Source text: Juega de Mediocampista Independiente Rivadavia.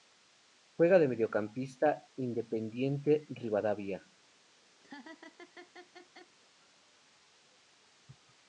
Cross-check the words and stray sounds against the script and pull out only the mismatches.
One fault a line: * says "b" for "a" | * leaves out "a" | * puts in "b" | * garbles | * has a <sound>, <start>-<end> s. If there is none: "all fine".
* has a laugh, 4.8-6.3 s